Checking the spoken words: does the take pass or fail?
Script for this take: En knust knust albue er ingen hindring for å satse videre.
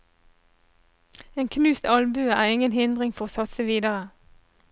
fail